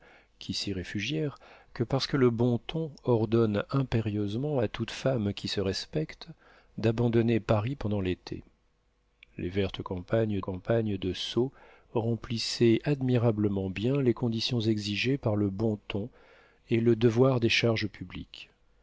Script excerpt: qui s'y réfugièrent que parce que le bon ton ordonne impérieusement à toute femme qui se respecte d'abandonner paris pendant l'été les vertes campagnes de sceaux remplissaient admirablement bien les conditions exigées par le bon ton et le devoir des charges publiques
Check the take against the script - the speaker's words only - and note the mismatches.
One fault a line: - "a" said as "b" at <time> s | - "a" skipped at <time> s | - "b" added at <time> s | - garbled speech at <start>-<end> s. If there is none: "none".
- "campagnes" added at 10.4 s